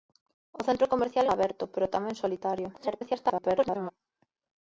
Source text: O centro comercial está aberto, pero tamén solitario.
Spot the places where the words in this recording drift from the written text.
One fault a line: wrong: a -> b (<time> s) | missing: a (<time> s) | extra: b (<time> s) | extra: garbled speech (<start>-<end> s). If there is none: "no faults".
missing: está (1.2 s)
extra: garbled speech (2.7-3.9 s)